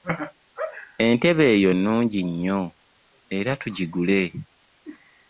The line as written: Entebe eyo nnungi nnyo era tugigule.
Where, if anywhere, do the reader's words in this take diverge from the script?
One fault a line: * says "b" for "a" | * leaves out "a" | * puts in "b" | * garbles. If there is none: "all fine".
all fine